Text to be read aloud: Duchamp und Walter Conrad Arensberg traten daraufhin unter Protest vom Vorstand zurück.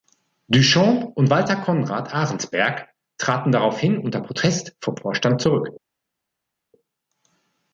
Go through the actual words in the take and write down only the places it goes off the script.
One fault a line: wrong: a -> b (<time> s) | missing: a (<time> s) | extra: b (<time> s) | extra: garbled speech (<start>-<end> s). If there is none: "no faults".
no faults